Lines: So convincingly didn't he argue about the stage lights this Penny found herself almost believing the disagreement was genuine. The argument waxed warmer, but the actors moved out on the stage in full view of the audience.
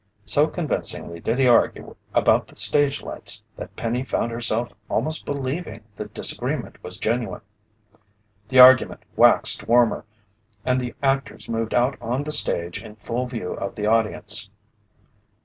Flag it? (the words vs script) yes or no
yes